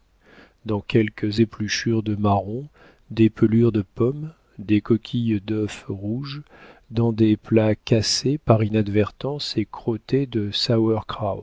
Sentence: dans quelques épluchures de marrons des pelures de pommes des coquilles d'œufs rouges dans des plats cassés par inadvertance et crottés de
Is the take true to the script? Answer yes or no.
yes